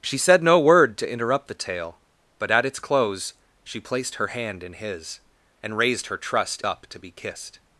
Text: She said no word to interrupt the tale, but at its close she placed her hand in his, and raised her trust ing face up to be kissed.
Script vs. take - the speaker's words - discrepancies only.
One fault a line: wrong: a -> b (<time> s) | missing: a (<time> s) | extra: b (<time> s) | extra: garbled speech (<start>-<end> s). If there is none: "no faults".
missing: ing face (6.6 s)